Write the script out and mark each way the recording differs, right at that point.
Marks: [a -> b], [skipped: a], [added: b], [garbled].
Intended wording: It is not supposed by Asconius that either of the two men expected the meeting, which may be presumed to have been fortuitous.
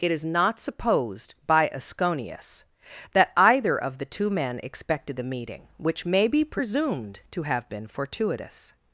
It is not supposed by Asconius that either of the two men expected the meeting, which may be presumed to have been fortuitous.